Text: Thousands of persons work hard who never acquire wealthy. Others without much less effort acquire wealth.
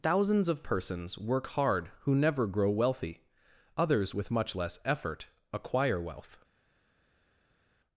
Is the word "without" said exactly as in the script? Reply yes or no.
no